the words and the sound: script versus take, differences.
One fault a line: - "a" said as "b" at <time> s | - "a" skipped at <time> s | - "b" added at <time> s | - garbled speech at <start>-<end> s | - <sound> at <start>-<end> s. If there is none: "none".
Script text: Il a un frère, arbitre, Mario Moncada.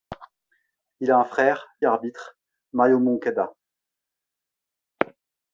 none